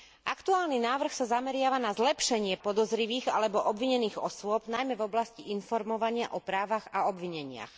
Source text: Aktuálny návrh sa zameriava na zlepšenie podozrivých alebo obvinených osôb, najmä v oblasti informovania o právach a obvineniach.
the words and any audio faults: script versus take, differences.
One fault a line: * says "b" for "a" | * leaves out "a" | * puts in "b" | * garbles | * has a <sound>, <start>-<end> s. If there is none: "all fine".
all fine